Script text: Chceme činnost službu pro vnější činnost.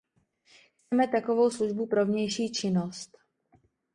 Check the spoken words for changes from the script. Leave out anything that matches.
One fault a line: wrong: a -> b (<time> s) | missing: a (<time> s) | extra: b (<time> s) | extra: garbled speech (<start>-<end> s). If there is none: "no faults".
wrong: činnost -> takovou (1.1 s)